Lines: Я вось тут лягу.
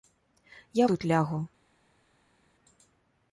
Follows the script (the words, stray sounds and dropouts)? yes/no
no